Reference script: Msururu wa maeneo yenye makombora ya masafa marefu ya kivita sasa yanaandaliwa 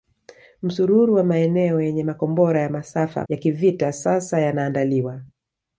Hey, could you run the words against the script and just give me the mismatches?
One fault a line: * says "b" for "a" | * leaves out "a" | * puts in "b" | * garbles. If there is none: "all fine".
* leaves out "marefu"